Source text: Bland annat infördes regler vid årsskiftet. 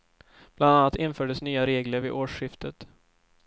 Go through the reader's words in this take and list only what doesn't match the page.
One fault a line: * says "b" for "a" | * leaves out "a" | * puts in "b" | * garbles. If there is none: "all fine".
* puts in "nya"